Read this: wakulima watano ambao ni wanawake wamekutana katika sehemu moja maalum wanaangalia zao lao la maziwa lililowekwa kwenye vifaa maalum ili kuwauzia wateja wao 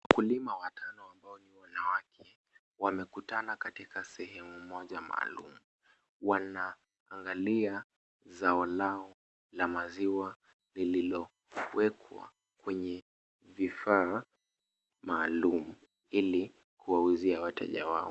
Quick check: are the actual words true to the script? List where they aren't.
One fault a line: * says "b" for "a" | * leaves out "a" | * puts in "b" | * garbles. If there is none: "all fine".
all fine